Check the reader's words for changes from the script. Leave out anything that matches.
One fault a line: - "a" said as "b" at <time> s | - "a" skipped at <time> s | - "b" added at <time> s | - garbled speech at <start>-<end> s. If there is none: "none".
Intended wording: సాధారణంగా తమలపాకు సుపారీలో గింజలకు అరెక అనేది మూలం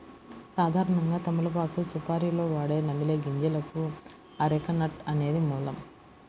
- "వాడే నమిలే" added at 2.5 s
- "నట్" added at 4.8 s